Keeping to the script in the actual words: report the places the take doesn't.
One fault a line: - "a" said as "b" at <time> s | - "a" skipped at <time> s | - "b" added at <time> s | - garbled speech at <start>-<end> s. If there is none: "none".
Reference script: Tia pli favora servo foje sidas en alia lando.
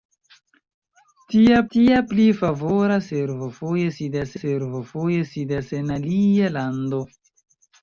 - "tia" added at 1.7 s
- "servo foje sidas" added at 4.4 s